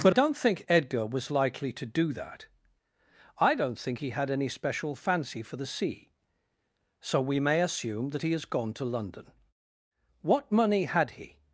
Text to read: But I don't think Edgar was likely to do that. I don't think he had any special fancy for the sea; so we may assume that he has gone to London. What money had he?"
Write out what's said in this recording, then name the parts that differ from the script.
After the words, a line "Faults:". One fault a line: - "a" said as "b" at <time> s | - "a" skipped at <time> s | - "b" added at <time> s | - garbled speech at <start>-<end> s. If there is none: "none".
But don't think Edgar was likely to do that. I don't think he had any special fancy for the sea; so we may assume that he has gone to London. What money had he?"
Faults:
- "I" skipped at 0.1 s